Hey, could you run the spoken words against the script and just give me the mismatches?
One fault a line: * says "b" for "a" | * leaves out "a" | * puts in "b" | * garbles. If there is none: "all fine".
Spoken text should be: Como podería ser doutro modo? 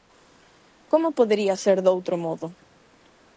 all fine